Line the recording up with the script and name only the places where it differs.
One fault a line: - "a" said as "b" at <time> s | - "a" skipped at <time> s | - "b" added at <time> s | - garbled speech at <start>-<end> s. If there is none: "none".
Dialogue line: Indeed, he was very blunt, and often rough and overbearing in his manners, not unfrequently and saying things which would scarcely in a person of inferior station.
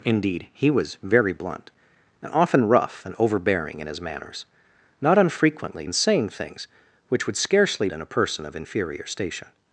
none